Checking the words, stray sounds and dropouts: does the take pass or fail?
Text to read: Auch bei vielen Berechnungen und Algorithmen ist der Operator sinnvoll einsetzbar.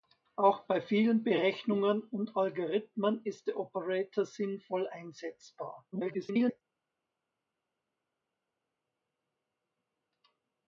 fail